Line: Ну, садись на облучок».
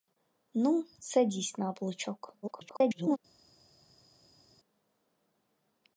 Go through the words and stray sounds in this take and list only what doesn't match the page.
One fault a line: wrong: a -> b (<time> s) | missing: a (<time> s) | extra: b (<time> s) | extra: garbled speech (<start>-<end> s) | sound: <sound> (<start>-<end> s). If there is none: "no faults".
extra: garbled speech (2.4-3.2 s)